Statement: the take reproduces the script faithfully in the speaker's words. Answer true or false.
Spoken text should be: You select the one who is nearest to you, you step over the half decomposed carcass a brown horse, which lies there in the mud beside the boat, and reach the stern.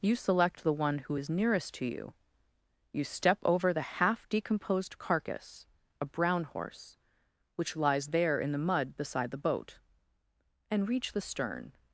true